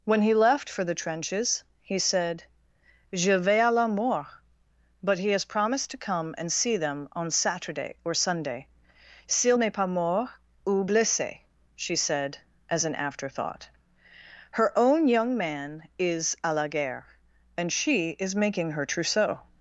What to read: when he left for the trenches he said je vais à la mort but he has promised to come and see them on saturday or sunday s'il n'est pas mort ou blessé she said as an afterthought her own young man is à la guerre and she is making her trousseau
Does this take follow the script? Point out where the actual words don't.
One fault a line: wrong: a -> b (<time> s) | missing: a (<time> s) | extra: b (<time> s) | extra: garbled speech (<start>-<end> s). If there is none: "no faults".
no faults